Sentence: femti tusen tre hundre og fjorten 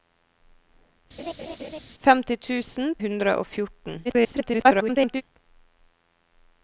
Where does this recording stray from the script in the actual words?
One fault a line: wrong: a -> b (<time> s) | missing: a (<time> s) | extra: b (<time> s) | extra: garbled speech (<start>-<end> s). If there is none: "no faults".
missing: tre (2.9 s)
extra: garbled speech (4.0-5.2 s)